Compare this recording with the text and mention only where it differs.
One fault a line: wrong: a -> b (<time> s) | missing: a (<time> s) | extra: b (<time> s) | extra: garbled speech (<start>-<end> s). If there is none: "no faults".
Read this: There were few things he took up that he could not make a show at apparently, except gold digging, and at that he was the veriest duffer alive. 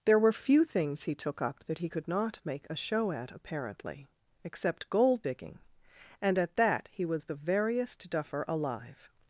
no faults